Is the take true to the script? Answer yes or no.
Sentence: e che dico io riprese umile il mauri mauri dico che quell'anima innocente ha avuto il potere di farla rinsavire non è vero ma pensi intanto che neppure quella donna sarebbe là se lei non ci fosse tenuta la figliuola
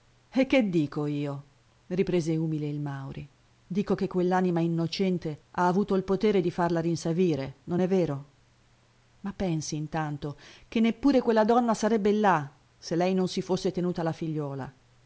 no